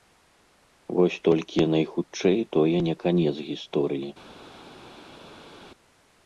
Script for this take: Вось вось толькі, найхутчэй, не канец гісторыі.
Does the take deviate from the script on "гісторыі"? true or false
false